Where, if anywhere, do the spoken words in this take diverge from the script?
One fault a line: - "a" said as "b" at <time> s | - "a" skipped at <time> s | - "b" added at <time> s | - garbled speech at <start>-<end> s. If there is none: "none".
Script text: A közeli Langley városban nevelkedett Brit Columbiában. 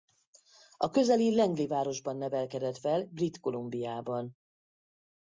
- "fel" added at 2.7 s